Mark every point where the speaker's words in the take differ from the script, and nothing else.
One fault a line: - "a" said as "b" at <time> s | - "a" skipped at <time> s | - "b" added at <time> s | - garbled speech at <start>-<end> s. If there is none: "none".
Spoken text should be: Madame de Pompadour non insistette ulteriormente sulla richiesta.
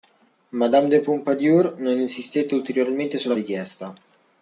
none